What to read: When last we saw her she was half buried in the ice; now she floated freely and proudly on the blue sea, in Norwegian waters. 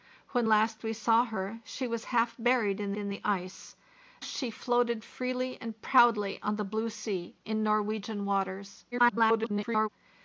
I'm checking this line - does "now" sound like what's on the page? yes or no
no